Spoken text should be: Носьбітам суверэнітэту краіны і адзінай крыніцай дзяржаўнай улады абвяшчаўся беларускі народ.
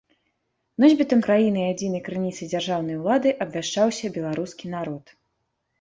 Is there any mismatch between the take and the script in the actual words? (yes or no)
yes